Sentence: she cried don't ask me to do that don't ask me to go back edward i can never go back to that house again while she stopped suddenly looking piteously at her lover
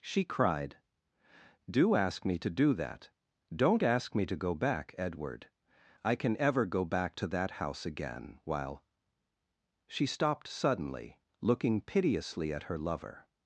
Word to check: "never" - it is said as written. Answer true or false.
false